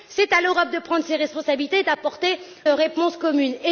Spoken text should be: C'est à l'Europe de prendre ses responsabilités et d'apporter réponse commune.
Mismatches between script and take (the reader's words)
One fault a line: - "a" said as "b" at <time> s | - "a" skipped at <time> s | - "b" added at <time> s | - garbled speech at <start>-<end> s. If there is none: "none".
none